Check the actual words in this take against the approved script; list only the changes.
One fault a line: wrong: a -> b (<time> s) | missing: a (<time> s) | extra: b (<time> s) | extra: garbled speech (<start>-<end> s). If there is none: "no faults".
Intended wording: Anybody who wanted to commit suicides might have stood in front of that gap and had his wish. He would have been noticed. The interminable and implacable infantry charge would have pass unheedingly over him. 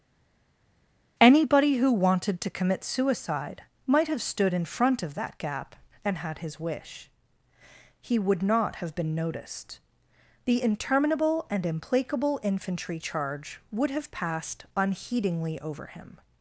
wrong: suicides -> suicide (2.8 s)
extra: not (8.4 s)
wrong: pass -> passed (14.1 s)